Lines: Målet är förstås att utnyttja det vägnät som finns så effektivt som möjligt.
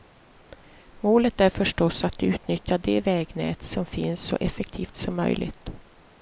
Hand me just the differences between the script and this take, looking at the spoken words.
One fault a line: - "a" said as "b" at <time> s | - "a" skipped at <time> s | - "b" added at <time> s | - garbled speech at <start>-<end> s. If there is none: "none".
none